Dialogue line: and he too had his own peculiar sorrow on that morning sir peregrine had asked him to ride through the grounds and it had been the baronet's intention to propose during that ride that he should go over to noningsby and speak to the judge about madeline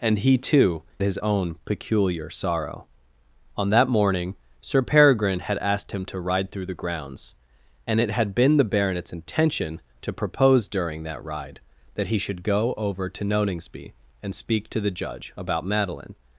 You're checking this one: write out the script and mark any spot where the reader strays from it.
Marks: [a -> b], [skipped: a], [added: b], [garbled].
and he too [skipped: had] his own peculiar sorrow on that morning sir peregrine had asked him to ride through the grounds and it had been the baronet's intention to propose during that ride that he should go over to noningsby and speak to the judge about madeline